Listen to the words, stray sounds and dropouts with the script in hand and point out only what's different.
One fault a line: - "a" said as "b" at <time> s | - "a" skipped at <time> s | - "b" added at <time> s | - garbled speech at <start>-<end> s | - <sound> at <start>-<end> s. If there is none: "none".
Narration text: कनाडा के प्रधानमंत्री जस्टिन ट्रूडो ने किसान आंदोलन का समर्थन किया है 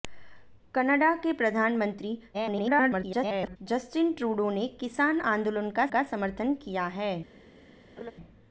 - garbled speech at 2.3-3.6 s
- "का" added at 5.9 s
- laugh at 8.0-8.1 s